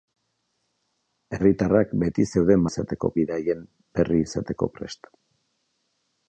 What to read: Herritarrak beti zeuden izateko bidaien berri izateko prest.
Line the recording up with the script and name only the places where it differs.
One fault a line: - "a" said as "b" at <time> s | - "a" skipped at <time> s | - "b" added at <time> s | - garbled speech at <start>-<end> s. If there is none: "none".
none